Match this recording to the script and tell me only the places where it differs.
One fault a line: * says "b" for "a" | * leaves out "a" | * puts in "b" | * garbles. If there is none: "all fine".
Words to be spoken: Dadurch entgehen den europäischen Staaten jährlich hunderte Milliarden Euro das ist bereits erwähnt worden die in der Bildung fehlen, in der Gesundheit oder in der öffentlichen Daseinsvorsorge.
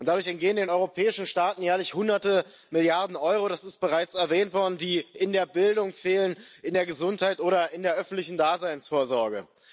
all fine